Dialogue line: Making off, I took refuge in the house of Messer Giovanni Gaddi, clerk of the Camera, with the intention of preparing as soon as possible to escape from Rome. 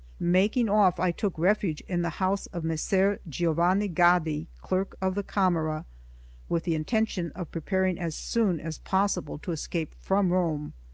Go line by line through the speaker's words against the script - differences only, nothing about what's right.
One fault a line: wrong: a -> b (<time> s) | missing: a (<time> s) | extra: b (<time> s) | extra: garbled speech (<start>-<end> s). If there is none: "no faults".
no faults